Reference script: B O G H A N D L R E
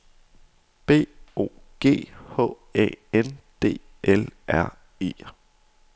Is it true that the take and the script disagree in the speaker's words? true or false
false